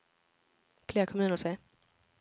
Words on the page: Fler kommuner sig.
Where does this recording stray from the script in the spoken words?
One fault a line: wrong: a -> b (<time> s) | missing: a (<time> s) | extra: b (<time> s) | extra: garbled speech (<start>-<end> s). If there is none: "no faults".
no faults